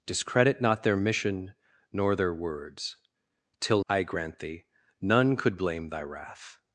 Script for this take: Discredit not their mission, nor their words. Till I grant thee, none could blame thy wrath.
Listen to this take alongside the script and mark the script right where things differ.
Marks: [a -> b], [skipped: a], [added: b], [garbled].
Discredit not their mission, nor their words. Till I grant thee, none could blame thy wrath.